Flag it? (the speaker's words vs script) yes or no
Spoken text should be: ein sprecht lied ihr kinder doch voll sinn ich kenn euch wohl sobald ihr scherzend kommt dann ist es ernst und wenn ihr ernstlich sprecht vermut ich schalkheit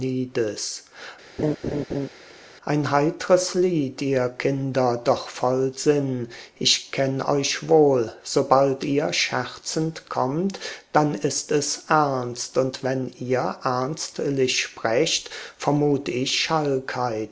yes